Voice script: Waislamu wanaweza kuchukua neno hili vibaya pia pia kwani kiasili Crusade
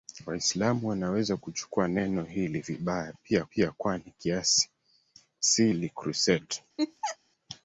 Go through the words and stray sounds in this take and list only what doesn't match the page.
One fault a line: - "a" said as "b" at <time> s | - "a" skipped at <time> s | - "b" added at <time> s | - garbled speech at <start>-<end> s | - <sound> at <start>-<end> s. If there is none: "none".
- laugh at 6.8-7.2 s